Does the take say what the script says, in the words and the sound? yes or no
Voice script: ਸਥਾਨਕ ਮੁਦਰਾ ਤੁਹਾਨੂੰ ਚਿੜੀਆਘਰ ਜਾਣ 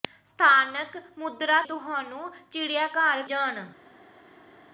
yes